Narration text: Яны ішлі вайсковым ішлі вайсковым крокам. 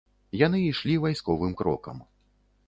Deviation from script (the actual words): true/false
true